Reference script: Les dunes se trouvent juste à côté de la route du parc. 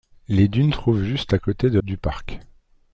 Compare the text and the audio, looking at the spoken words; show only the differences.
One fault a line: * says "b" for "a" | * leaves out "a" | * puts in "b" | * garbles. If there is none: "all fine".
* leaves out "se"
* leaves out "la route"